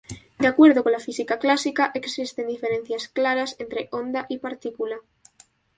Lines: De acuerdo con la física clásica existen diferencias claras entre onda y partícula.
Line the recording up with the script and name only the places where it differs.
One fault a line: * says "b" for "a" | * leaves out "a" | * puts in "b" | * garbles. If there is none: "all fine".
all fine